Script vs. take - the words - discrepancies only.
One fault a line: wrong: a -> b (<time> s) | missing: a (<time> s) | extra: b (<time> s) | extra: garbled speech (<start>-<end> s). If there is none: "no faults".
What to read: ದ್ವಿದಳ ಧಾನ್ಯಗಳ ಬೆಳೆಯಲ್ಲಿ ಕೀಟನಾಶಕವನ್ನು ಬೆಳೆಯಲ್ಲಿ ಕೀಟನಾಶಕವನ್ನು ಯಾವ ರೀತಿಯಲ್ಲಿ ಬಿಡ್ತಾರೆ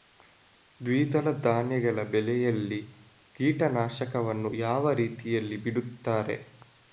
missing: ಬೆಳೆಯಲ್ಲಿ ಕೀಟನಾಶಕವನ್ನು (4.5 s)